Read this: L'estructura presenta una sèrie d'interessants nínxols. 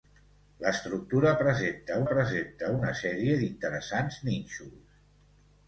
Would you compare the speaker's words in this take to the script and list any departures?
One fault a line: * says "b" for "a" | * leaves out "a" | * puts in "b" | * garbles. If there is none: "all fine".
* puts in "presenta"